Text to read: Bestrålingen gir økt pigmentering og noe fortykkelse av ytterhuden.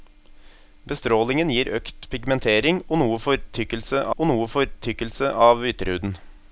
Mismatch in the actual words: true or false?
true